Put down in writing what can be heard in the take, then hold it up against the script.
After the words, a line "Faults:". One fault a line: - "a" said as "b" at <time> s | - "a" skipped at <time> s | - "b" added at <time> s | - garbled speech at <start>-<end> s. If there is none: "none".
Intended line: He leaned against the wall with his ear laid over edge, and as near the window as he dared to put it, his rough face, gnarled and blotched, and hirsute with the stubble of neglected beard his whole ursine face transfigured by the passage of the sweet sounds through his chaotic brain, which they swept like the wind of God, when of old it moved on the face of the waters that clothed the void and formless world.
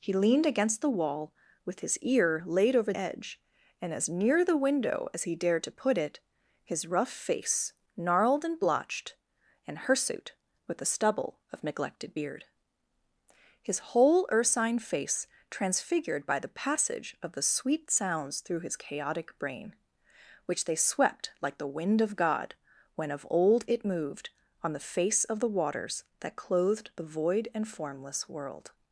He leaned against the wall with his ear laid over edge, and as near the window as he dared to put it, his rough face, gnarled and blotched, and hirsute with the stubble of neglected beard his whole ursine face transfigured by the passage of the sweet sounds through his chaotic brain, which they swept like the wind of God, when of old it moved on the face of the waters that clothed the void and formless world.
Faults:
none